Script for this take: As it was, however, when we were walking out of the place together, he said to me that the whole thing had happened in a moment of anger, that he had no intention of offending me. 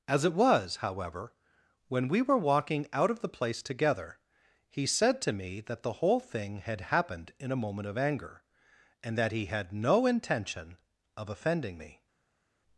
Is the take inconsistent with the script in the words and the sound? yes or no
yes